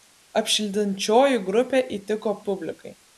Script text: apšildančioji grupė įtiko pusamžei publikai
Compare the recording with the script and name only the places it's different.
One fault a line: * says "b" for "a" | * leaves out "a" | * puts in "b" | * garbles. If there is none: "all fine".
* leaves out "pusamžei"